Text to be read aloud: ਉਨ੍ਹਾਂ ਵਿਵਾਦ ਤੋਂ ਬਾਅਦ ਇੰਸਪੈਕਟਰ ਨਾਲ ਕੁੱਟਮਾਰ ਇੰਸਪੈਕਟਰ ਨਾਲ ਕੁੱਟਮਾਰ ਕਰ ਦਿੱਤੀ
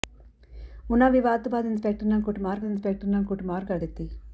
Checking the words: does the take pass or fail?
pass